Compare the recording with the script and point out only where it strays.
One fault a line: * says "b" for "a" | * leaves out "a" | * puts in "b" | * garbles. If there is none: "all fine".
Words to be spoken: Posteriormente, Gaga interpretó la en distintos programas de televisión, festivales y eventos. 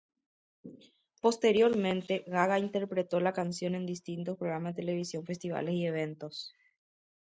* puts in "canción"